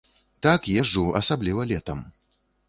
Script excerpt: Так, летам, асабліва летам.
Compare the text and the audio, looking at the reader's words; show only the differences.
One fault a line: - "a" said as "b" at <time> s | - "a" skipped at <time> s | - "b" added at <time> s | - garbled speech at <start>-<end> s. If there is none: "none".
- "летам" said as "езджу" at 0.8 s